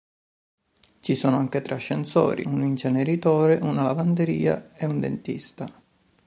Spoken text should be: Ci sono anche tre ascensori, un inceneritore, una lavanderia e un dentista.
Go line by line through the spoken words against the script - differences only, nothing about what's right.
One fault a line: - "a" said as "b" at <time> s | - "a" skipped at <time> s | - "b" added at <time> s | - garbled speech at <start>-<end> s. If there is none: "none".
none